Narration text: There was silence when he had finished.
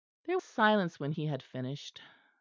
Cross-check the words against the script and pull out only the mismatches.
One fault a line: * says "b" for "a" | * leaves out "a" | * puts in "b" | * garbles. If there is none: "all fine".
* leaves out "was"